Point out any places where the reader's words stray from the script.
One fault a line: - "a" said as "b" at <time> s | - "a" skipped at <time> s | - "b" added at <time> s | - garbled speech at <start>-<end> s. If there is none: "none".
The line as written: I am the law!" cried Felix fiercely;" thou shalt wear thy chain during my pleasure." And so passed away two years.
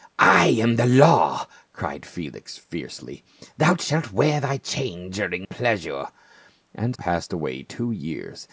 - "my" skipped at 5.5 s
- "so" skipped at 7.0 s